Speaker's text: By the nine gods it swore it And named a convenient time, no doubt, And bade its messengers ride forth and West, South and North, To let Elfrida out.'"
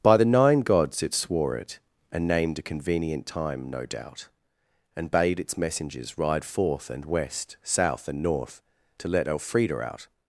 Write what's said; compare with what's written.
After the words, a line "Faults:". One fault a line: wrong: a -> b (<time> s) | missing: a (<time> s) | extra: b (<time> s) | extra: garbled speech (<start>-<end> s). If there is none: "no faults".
By the nine gods it swore it And named a convenient time, no doubt, And bade its messengers ride forth and West, South and North, To let Elfrida out.'"
Faults:
no faults